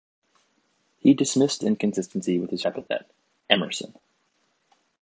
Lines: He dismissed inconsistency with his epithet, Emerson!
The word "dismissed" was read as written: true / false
true